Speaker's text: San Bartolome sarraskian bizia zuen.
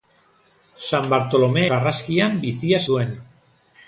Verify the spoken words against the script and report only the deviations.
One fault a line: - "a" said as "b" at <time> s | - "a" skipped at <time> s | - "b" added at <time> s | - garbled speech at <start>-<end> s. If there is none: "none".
none